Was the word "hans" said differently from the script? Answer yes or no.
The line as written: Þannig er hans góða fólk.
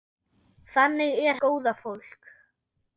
yes